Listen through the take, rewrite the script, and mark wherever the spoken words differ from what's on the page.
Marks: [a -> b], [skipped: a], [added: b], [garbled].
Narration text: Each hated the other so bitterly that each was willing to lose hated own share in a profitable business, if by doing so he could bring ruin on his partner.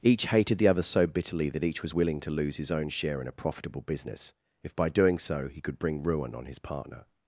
Each hated the other so bitterly that each was willing to lose [hated -> his] own share in a profitable business, if by doing so he could bring ruin on his partner.